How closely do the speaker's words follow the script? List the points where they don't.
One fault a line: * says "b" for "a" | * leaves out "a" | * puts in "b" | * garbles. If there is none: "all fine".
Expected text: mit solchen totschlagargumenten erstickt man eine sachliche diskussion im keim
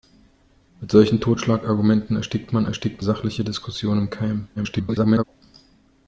* says "erstickt" for "eine"
* garbles